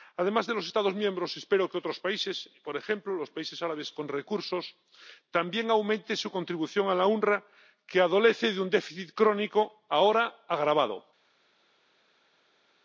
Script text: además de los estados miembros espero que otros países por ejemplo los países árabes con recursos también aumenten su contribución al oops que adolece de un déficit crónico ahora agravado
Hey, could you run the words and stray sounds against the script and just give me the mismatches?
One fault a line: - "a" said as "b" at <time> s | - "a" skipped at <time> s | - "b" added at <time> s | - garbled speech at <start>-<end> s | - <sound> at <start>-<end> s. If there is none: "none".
none